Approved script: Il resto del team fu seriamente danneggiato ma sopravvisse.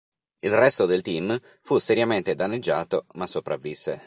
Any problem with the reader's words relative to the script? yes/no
no